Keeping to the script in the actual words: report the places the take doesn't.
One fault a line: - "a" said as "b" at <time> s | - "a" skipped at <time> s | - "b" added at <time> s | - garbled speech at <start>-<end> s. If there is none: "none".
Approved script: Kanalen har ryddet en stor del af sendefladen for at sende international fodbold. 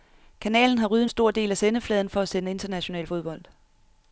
none